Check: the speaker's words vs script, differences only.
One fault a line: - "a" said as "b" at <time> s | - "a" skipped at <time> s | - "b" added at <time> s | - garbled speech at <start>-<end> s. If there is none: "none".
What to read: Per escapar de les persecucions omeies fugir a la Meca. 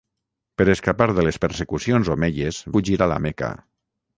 none